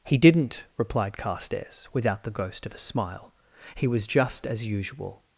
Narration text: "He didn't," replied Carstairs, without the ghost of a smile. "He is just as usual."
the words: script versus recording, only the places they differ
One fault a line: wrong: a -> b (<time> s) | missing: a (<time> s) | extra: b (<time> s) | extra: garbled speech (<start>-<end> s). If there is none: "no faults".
wrong: is -> was (3.9 s)